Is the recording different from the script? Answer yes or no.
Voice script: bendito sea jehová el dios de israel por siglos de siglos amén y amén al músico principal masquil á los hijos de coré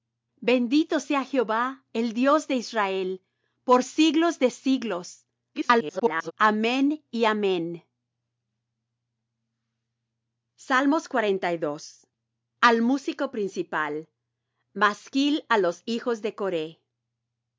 yes